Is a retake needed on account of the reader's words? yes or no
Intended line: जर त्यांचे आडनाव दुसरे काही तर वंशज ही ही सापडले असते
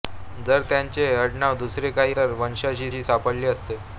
no